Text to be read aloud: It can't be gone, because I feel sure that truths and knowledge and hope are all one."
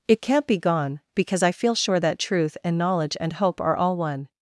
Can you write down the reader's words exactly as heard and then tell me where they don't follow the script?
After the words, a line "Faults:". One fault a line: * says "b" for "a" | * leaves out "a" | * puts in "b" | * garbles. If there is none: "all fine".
It can't be gone, because I feel sure that truth and knowledge and hope are all one."
Faults:
* says "truth" for "truths"